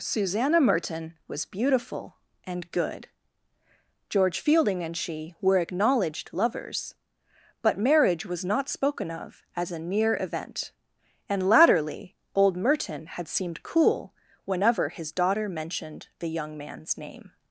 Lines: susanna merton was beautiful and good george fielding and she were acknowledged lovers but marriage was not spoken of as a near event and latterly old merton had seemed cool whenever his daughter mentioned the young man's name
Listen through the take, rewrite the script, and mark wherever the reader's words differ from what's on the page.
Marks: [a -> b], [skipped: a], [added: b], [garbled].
susanna merton was beautiful and good george fielding and she were acknowledged lovers but marriage was not spoken of as a near event and latterly old merton had seemed cool whenever his daughter mentioned the young man's name